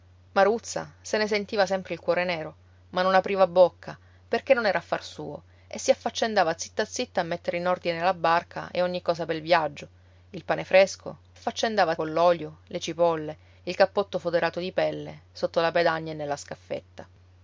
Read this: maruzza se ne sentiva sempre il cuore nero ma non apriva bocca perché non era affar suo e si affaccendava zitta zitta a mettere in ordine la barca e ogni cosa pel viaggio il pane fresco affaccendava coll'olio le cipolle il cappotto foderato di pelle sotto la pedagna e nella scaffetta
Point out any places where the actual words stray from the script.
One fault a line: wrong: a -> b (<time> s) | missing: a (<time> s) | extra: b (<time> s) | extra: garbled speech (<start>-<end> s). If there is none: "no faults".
no faults